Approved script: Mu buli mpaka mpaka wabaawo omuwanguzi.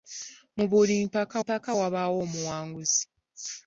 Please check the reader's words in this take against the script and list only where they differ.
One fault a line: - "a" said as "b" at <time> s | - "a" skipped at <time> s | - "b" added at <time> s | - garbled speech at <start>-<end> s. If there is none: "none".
none